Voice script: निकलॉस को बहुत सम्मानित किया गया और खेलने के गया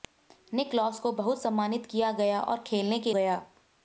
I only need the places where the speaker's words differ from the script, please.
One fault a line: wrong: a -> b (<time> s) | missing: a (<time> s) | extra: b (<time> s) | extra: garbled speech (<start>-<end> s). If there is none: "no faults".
no faults